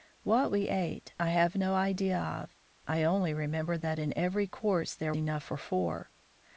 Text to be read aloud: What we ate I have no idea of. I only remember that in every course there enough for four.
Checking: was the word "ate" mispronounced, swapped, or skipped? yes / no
no